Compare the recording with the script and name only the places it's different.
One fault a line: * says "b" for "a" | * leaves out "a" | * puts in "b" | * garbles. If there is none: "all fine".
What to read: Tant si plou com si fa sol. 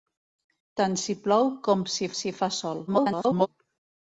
* puts in "si"
* garbles